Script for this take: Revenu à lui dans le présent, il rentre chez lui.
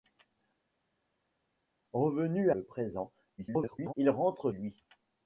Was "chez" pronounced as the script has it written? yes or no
no